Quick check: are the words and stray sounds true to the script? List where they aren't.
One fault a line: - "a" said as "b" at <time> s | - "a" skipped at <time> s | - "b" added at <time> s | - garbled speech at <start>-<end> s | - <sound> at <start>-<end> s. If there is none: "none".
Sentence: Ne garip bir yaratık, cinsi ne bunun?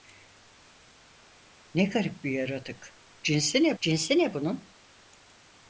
- "cinsi ne" added at 3.8 s